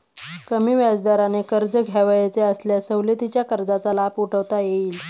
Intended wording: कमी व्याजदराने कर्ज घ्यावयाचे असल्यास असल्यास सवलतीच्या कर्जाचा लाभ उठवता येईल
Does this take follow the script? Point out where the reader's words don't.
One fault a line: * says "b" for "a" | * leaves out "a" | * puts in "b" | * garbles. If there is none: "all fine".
* leaves out "असल्यास"